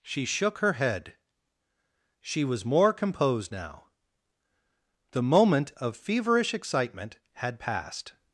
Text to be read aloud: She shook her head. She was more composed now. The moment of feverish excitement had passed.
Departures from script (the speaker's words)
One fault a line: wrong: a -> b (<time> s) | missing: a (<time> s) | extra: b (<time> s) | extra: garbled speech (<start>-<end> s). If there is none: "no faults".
no faults